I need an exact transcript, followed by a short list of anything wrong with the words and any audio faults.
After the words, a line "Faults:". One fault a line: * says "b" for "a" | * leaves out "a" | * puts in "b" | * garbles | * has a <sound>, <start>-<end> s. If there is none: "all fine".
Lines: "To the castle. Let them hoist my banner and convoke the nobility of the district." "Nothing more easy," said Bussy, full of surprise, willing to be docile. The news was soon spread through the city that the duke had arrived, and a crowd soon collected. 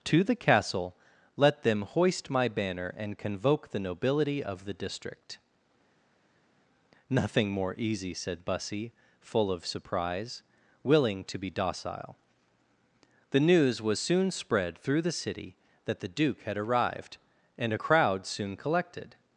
"To the castle. Let them hoist my banner and convoke the nobility of the district." "Nothing more easy," said Bussy, full of surprise, willing to be docile. The news was soon spread through the city that the duke had arrived, and a crowd soon collected.
Faults:
all fine